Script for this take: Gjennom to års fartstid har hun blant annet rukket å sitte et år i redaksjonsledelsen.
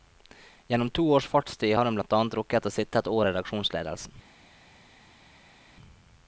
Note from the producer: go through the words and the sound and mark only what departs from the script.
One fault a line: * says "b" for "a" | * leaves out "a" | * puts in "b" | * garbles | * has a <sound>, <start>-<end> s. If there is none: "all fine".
all fine